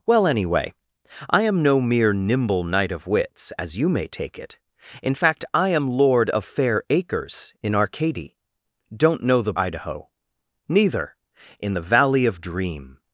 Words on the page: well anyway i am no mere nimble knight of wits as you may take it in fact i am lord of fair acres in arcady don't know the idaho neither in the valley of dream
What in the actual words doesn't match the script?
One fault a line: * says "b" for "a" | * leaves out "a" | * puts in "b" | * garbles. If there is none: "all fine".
all fine